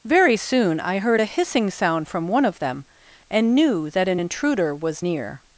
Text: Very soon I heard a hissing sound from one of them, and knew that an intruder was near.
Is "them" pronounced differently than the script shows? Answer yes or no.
no